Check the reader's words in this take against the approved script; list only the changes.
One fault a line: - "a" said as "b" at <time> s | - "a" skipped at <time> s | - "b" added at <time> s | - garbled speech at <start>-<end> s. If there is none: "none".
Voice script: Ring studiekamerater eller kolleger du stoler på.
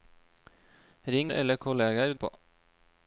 - "studiekamerater" skipped at 1.3 s
- "du stoler" skipped at 2.1 s